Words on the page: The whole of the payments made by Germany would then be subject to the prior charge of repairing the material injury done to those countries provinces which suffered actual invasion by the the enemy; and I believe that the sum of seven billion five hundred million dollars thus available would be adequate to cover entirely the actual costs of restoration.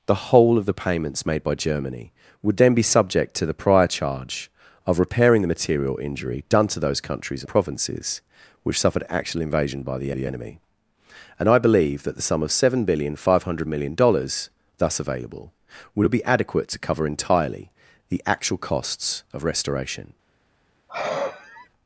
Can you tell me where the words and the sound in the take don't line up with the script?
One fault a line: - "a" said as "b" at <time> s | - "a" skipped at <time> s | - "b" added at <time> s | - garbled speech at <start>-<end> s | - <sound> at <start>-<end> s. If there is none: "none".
- sigh at 20.9-21.7 s